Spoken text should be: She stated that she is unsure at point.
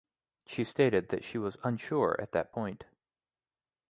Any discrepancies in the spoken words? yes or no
yes